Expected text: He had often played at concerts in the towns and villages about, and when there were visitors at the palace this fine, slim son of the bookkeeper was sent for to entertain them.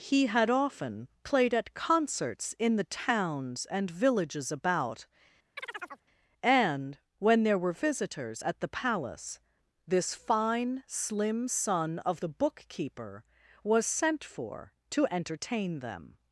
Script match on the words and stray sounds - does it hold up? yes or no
no